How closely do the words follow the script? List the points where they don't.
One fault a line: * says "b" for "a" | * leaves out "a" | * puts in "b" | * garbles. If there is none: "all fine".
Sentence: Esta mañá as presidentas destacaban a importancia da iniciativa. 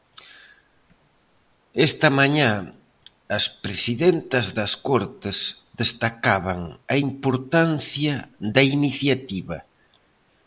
* puts in "das Cortes"